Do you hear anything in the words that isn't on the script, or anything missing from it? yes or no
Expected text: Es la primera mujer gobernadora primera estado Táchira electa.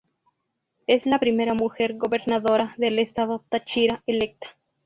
yes